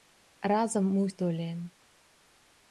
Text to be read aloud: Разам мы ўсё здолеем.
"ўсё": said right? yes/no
no